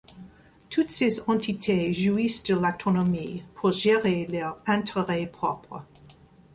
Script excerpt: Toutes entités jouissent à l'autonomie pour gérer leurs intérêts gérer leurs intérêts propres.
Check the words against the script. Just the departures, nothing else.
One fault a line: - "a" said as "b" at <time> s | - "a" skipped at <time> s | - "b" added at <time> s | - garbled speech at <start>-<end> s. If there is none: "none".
- "ces" added at 0.9 s
- "à" said as "de" at 2.4 s
- "gérer leurs intérêts" skipped at 5.3 s